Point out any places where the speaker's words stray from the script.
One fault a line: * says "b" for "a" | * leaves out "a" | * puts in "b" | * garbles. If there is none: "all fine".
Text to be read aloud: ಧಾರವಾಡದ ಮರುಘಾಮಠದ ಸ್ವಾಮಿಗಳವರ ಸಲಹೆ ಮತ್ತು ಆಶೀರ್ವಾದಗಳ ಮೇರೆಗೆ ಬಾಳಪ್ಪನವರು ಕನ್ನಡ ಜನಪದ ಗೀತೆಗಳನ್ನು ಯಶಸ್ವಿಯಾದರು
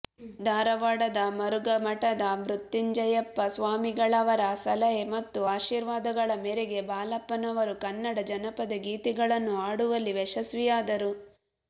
* puts in "ಮೃತ್ಯುಂಜಯಪ್ಪ"
* puts in "ಹಾಡುವಲ್ಲಿ"